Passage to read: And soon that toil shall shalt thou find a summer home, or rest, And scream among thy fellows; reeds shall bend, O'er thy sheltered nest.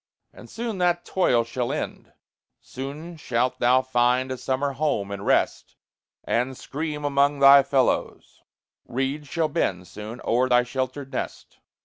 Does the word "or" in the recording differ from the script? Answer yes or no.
yes